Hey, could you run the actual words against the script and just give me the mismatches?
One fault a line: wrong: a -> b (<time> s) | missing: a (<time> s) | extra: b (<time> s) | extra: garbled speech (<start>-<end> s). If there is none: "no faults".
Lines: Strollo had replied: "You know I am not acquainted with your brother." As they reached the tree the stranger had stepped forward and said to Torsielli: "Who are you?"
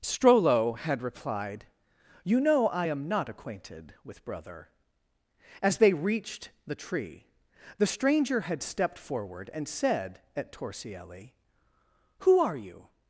missing: your (4.2 s)
wrong: to -> at (10.4 s)